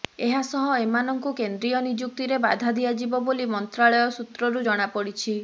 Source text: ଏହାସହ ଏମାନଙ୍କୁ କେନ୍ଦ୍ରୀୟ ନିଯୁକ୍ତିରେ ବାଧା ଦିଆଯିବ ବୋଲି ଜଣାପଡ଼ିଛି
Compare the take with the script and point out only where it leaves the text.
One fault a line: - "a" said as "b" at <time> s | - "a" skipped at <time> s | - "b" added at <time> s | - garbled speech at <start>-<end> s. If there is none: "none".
- "ମନ୍ତ୍ରାଳୟ ସୂତ୍ରରୁ" added at 3.5 s